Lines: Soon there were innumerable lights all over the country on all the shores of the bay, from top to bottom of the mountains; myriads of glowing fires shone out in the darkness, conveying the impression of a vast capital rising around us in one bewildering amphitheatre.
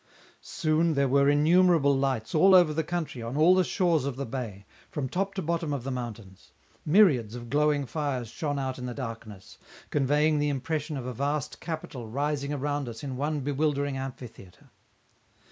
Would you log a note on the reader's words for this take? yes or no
no